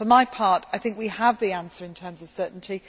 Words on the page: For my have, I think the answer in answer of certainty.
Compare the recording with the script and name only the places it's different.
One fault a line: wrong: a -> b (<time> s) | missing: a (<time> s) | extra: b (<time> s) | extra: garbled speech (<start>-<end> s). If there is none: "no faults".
wrong: have -> part (0.2 s)
extra: we have (1.0 s)
wrong: answer -> terms (1.9 s)